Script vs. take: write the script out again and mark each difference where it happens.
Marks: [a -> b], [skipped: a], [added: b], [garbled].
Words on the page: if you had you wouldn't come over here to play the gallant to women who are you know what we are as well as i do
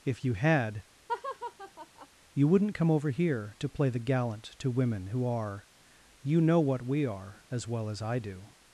if you had you wouldn't come over here to play the gallant to women who are you know what we are as well as i do